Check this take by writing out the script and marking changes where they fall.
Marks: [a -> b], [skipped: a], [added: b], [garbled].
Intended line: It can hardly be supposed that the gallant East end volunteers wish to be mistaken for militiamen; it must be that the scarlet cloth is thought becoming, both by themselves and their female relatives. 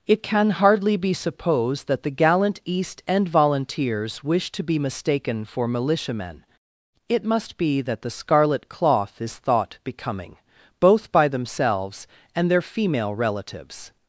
It can hardly be supposed that the gallant East end volunteers wish to be mistaken for militiamen; it must be that the scarlet cloth is thought becoming, both by themselves and their female relatives.